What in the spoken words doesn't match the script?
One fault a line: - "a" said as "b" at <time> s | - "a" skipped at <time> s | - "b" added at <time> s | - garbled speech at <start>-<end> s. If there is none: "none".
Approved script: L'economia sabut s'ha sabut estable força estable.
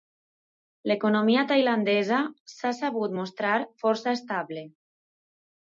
- "sabut" said as "tailandesa" at 1.5 s
- "estable" said as "mostrar" at 3.2 s